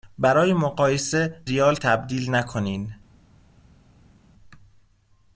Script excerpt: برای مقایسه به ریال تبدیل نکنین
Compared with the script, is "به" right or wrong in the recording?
wrong